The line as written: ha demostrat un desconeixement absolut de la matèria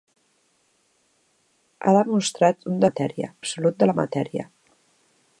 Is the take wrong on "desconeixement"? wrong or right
wrong